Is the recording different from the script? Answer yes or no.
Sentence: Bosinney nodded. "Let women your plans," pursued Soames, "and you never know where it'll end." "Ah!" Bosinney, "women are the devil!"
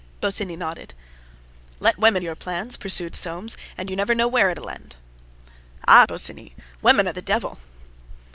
no